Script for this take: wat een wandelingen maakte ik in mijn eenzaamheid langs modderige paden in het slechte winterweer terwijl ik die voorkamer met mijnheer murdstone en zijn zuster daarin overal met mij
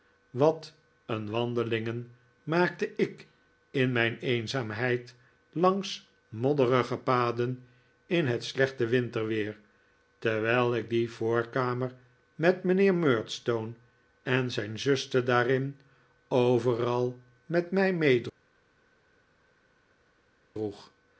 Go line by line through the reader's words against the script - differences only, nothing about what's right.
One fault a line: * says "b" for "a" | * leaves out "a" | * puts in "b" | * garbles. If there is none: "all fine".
all fine